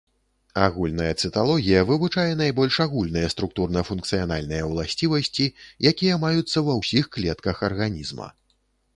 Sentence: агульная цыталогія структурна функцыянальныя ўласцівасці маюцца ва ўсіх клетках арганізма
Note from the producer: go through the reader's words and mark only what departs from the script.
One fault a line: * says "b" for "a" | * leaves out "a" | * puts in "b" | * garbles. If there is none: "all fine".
* puts in "вывучае найбольш агульныя"
* puts in "якія"